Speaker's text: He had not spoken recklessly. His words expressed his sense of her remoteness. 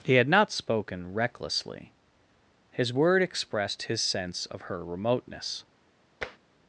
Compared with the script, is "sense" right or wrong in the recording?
right